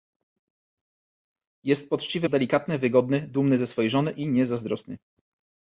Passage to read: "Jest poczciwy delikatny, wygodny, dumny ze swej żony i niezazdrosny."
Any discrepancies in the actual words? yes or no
no